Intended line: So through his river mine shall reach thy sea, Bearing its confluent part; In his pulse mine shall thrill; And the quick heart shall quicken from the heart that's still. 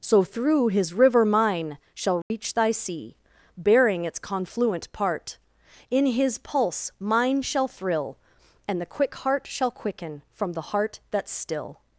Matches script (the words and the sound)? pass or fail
fail